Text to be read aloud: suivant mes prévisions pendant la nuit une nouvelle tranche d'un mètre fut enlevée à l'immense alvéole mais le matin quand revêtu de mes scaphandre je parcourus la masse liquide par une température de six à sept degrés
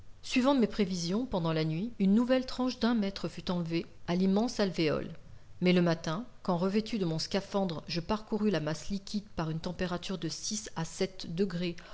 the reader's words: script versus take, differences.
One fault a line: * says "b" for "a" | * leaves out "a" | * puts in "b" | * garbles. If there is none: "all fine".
* says "mon" for "mes"